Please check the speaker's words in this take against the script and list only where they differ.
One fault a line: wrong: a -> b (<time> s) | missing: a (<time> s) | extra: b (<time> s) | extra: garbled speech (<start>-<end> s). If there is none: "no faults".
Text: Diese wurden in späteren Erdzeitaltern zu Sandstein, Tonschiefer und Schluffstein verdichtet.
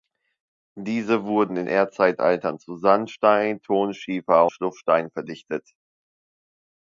missing: späteren (1.7 s)
missing: und (4.5 s)